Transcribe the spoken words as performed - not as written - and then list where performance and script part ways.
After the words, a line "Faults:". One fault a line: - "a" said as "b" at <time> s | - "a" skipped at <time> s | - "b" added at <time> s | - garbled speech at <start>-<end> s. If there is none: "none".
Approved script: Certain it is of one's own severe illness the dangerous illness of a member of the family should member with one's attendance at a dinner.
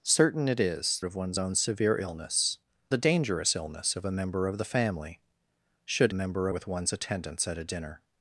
Certain it is of one's own severe illness the dangerous illness of a member of the family should member with one's attendance at a dinner.
Faults:
none